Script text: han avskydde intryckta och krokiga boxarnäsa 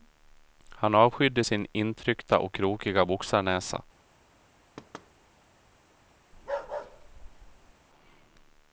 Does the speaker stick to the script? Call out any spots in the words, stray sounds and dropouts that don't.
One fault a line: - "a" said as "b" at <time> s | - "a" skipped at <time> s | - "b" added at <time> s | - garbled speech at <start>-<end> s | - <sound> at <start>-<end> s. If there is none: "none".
- "sin" added at 1.4 s
- thud at 4.8-5.1 s
- bark at 6.3-7.7 s